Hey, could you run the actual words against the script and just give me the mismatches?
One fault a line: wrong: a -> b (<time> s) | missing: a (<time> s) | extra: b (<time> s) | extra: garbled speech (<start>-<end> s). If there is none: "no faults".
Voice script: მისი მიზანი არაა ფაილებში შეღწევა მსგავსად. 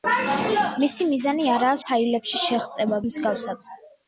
no faults